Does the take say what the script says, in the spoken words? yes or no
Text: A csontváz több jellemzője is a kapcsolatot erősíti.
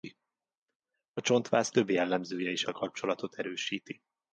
yes